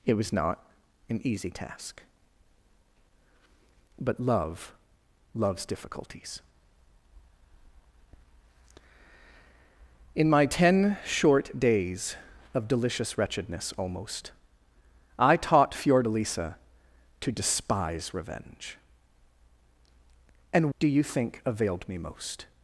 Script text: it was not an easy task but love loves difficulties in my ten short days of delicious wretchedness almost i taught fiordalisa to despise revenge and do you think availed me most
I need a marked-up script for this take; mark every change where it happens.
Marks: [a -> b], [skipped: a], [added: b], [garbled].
it was not an easy task but love loves difficulties in my ten short days of delicious wretchedness almost i taught fiordalisa to despise revenge and do you think availed me most